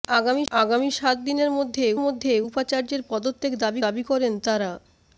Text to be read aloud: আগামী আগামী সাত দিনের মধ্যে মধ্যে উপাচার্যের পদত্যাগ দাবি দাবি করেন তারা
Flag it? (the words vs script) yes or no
no